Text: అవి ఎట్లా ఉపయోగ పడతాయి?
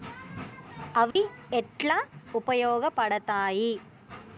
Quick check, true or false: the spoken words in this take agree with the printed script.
true